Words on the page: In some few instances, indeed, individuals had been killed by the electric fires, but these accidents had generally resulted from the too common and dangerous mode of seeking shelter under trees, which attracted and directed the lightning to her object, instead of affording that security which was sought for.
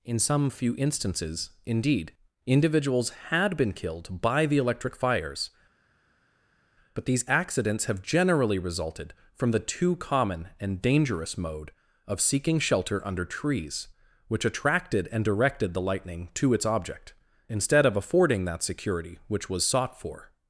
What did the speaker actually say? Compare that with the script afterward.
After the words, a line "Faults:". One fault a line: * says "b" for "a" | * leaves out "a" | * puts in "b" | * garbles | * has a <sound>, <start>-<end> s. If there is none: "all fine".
In some few instances, indeed, individuals had been killed by the electric fires, but these accidents have generally resulted from the too common and dangerous mode of seeking shelter under trees, which attracted and directed the lightning to its object, instead of affording that security which was sought for.
Faults:
* says "have" for "had"
* says "its" for "her"